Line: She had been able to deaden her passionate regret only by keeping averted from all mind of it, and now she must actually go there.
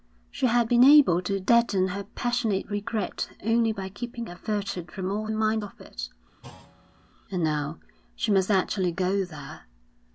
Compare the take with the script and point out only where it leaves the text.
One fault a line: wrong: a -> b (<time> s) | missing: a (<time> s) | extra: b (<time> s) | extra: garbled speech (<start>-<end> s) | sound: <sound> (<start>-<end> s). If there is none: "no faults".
sound: thud (6.4-7.1 s)